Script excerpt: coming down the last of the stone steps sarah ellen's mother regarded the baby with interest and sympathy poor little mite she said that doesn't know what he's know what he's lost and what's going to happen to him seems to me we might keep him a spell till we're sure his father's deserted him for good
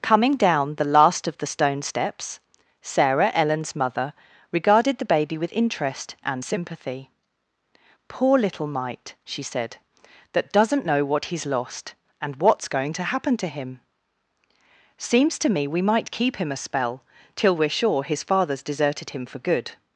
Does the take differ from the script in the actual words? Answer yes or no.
yes